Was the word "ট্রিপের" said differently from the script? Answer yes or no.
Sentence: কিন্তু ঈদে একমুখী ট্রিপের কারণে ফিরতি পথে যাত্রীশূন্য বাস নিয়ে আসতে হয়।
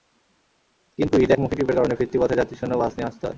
no